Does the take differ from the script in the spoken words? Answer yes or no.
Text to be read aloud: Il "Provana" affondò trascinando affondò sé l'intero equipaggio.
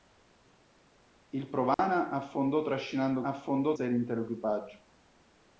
no